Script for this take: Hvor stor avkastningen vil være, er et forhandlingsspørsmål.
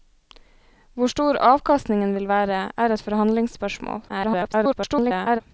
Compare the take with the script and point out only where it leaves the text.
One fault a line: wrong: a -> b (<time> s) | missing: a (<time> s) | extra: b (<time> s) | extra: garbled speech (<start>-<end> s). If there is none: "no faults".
extra: garbled speech (4.1-5.4 s)